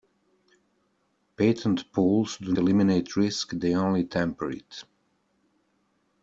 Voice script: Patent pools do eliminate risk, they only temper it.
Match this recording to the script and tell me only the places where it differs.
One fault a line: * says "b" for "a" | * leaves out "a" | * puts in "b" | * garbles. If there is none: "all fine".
all fine